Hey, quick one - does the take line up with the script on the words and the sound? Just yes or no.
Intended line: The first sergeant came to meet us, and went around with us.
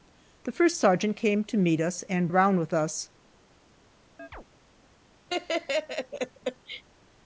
no